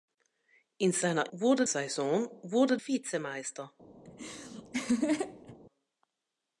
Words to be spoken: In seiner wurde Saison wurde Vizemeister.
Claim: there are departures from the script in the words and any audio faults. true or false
true